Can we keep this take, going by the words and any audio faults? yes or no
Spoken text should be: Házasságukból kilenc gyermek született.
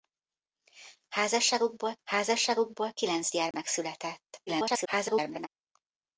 no